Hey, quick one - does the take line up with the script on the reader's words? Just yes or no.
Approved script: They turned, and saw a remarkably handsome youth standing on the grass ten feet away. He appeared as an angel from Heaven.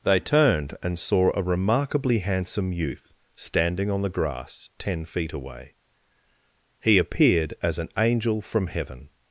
yes